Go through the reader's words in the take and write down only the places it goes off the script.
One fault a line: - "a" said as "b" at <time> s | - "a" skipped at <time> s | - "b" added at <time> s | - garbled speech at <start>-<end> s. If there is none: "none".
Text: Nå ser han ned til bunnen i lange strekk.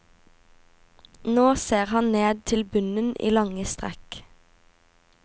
none